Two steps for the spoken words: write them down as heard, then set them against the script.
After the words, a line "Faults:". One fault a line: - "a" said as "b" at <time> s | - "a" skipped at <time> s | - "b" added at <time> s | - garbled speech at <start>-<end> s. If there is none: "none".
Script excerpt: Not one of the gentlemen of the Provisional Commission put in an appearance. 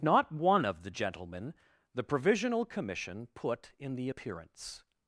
Not one of the gentlemen the Provisional Commission put in the appearance.
Faults:
- "of" skipped at 1.5 s
- "an" said as "the" at 4.0 s